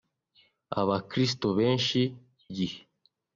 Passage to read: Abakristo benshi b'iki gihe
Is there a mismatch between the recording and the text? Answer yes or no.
yes